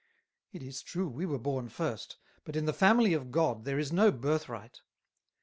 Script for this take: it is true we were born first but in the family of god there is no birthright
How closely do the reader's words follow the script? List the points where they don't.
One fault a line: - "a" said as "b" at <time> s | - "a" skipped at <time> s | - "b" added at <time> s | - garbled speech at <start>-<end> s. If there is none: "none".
none